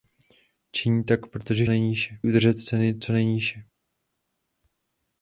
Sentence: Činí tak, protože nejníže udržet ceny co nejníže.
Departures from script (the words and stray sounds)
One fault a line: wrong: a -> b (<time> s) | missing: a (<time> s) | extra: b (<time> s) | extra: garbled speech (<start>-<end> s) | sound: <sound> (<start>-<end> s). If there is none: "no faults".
no faults